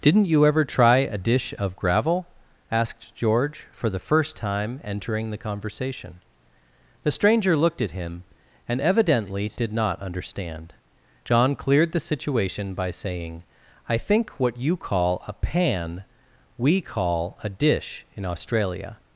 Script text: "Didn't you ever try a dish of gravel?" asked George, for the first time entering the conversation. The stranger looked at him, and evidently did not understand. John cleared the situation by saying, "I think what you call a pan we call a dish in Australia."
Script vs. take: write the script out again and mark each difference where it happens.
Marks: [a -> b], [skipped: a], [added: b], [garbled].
"Didn't you ever try a dish of gravel?" asked George, for the first time entering the conversation. The stranger looked at him, and evidently did not understand. John cleared the situation by saying, "I think what you call a pan we call a dish in Australia."